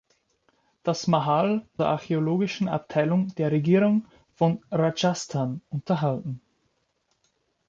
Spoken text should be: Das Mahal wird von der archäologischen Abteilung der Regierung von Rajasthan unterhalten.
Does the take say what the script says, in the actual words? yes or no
no